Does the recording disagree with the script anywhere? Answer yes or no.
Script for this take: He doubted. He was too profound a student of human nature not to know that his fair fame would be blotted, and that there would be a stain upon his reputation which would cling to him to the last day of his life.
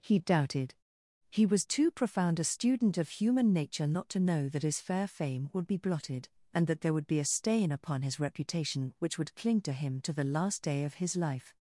no